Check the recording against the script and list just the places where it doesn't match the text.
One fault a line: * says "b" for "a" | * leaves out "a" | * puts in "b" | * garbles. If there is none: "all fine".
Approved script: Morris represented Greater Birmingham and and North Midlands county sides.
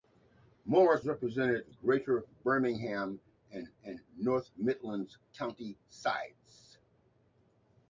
all fine